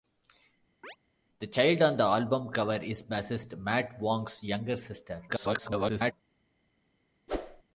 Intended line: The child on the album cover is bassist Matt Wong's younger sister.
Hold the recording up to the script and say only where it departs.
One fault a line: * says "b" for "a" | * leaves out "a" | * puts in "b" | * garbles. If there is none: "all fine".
* garbles